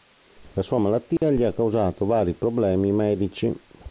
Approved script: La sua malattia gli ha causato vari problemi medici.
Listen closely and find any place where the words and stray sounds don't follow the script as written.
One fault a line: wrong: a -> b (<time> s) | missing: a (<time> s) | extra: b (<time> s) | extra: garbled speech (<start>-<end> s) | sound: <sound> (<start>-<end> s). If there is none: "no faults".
sound: dropout (1.2-1.2 s)